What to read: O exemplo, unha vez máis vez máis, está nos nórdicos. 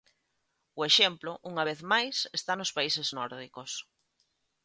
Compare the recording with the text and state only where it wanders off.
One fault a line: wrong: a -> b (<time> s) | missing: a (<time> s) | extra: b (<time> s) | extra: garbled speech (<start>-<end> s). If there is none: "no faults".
missing: vez máis (2.2 s)
extra: países (2.8 s)